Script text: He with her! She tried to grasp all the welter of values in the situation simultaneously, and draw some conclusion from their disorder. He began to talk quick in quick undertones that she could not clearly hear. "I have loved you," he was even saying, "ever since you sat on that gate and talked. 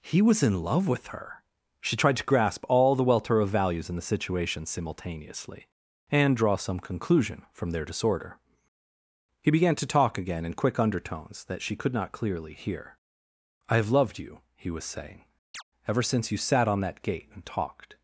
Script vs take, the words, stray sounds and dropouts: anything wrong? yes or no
yes